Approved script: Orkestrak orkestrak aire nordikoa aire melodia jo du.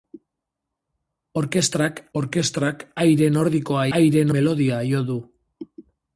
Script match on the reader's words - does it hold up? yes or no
yes